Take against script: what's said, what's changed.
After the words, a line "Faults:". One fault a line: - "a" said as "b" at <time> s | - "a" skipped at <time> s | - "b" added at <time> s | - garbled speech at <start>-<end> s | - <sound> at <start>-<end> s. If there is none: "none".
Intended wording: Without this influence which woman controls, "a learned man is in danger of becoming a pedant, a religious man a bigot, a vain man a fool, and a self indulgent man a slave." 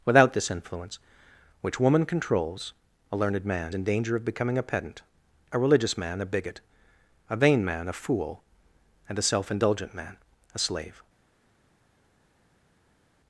Without this influence which woman controls, "a learned man in danger of becoming a pedant, a religious man a bigot, a vain man a fool, and a self indulgent man a slave."
Faults:
- "is" skipped at 3.8 s